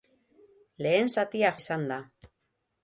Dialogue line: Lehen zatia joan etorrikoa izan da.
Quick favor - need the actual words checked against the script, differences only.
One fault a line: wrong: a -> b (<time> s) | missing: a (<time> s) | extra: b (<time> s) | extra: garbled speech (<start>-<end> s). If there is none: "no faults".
missing: joan etorrikoa (1.5 s)